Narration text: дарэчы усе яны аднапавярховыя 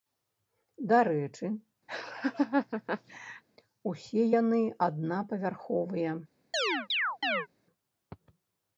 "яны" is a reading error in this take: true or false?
false